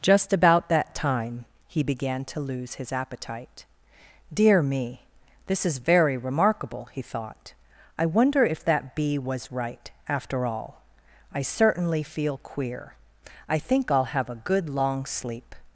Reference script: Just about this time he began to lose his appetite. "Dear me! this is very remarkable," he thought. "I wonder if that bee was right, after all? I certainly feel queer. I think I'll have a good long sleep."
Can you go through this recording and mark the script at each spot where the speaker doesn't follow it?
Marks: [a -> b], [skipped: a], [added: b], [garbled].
Just about [this -> that] time he began to lose his appetite. "Dear me! this is very remarkable," he thought. "I wonder if that bee was right, after all? I certainly feel queer. I think I'll have a good long sleep."